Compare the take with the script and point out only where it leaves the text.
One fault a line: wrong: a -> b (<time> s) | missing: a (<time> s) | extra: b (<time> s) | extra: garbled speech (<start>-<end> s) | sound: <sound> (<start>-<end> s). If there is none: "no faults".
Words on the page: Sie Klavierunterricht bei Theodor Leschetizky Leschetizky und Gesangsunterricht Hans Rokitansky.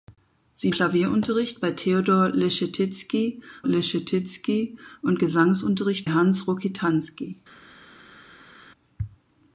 no faults